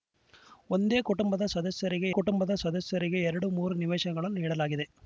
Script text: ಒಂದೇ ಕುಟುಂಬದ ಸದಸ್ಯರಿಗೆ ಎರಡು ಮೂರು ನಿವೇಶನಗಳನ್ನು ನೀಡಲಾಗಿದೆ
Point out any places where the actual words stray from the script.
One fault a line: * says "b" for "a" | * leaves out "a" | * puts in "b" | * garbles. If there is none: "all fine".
* puts in "ಕುಟುಂಬದ ಸದಸ್ಯರಿಗೆ"